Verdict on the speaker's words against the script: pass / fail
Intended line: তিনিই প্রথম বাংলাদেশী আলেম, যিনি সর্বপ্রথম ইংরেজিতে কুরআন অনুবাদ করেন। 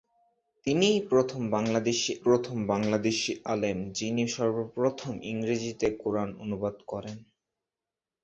fail